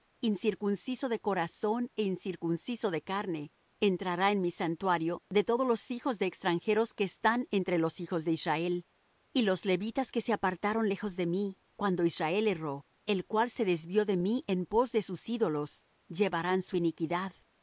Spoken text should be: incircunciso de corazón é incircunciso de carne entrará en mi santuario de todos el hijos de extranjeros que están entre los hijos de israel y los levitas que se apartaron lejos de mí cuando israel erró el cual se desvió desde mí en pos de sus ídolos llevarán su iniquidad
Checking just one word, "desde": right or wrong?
wrong